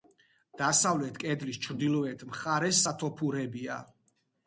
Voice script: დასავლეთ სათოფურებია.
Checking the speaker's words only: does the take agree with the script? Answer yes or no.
no